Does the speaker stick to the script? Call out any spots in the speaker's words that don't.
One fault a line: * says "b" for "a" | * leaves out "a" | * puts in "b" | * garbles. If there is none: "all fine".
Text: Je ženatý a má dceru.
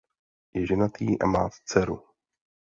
all fine